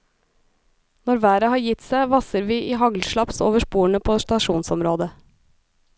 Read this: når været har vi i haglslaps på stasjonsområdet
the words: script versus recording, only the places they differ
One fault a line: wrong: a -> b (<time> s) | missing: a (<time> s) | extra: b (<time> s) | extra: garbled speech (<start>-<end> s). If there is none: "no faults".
extra: gitt seg vasser (1.6 s)
extra: over sporene (3.5 s)